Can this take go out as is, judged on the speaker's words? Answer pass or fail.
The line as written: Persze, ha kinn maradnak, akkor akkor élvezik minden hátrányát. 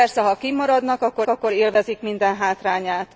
pass